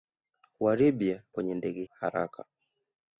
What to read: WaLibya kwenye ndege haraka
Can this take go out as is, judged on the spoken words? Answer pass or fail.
pass